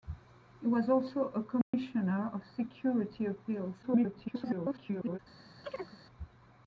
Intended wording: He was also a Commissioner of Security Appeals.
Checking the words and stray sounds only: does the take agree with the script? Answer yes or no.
no